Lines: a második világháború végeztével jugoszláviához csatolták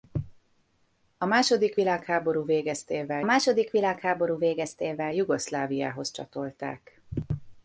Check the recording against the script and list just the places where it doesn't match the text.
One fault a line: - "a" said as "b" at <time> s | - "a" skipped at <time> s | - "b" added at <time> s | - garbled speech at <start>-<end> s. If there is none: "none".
- "második világháború végeztével" added at 3.2 s